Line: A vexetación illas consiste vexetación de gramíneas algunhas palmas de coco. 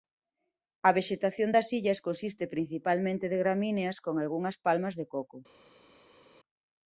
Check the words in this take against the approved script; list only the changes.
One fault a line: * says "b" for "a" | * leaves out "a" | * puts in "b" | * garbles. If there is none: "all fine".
* puts in "das"
* says "principalmente" for "vexetación"
* puts in "con"